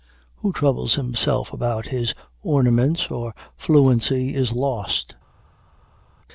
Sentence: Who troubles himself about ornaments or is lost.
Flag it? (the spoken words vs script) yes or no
yes